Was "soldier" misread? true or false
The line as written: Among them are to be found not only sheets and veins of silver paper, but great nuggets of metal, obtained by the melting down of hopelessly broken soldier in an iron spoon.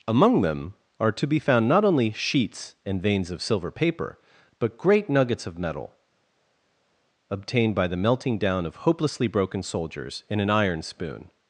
true